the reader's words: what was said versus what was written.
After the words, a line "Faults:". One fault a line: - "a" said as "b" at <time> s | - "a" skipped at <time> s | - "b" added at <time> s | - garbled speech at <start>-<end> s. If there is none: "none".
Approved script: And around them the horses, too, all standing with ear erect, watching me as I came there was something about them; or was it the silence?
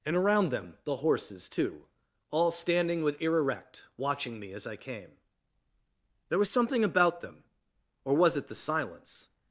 And around them the horses, too, all standing with ear erect, watching me as I came there was something about them; or was it the silence?
Faults:
none